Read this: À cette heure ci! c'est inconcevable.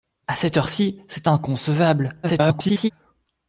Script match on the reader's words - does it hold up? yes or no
no